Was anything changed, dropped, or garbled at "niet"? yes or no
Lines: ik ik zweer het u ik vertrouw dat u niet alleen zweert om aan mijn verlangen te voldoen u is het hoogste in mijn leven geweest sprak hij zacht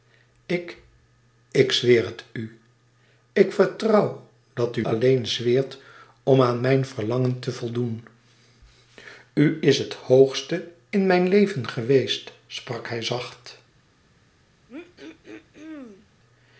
yes